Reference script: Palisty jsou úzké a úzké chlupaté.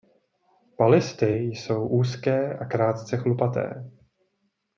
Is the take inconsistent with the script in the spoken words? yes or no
yes